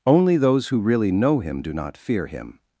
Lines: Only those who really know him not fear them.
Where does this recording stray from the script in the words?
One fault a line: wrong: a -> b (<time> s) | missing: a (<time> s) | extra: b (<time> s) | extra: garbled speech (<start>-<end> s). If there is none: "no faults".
extra: do (1.6 s)
wrong: them -> him (2.2 s)